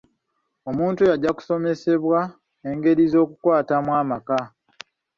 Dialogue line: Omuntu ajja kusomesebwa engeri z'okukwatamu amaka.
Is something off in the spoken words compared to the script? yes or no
yes